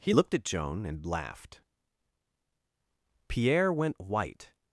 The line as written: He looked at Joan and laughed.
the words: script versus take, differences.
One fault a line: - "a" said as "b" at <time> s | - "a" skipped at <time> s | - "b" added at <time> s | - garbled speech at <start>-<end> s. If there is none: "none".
- "Pierre went white" added at 3.3 s